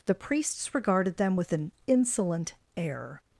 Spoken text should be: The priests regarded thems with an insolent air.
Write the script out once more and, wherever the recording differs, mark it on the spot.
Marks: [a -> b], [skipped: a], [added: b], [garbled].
The priests regarded [thems -> them] with an insolent air.